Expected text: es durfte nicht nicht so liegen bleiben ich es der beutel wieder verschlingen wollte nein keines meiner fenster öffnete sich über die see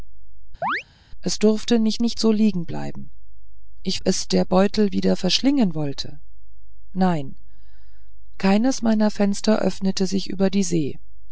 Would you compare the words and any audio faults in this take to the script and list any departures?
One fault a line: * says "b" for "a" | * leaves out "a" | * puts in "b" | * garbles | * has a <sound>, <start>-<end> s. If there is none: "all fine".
* has a chirp, 0.6-0.8 s